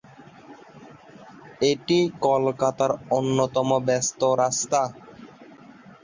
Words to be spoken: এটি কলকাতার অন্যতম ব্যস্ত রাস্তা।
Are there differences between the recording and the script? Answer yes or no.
no